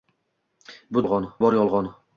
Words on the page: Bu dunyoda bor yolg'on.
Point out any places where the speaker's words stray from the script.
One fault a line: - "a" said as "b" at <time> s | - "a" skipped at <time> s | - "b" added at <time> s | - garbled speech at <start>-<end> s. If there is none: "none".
- "dunyoda" said as "yolg'on" at 1.0 s